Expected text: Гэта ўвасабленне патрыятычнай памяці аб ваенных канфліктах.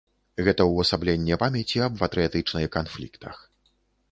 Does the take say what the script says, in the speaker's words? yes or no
no